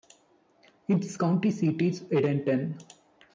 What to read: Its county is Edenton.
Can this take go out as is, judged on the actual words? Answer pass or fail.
fail